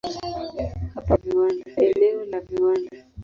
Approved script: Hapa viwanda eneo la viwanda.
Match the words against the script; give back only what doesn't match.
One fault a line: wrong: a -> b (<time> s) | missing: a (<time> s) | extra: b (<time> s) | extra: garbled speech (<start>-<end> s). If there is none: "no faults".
no faults